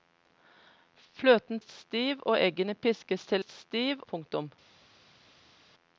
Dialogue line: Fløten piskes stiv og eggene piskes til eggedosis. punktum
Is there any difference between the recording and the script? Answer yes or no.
yes